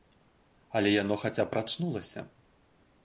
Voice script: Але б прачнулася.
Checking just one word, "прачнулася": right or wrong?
right